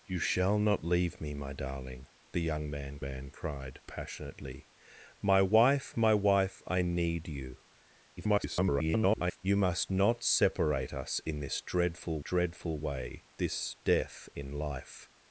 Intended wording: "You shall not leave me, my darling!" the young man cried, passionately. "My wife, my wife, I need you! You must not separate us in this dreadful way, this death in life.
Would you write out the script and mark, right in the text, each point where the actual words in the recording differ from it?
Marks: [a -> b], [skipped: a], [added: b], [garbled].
"You shall not leave me, my darling!" the young man [added: man] cried, passionately. "My wife, my wife, I need you! [garbled] You must not separate us in this dreadful [added: dreadful] way, this death in life.